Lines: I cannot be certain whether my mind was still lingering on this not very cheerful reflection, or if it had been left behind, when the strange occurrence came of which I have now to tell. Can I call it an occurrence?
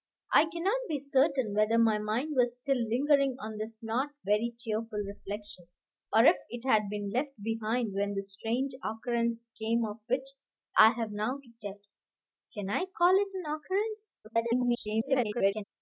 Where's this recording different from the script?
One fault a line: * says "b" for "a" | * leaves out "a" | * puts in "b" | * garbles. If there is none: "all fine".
* garbles